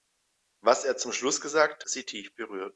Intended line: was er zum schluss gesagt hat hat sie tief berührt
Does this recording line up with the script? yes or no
no